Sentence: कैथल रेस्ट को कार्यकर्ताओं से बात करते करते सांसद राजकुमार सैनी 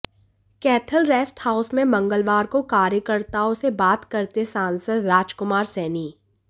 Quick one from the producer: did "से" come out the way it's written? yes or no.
yes